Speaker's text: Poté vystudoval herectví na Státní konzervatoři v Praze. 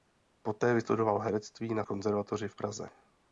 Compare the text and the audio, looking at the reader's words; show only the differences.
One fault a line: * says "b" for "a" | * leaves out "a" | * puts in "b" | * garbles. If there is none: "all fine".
* leaves out "Státní"